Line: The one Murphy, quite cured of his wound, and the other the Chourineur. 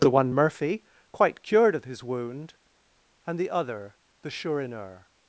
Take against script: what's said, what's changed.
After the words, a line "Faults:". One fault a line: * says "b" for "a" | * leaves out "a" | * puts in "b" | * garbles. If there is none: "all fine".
The one Murphy, quite cured of his wound, and the other the Chourineur.
Faults:
all fine